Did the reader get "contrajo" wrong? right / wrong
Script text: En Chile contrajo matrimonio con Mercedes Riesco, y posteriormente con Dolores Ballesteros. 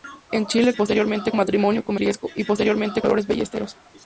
wrong